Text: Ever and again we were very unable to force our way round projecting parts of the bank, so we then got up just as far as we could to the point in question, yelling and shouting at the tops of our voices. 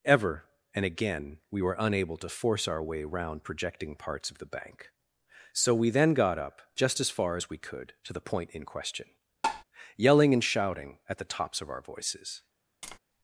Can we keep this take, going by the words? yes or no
no